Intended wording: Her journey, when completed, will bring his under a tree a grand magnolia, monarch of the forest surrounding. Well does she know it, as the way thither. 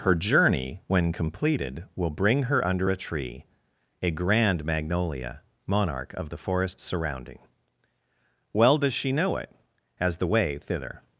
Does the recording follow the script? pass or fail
fail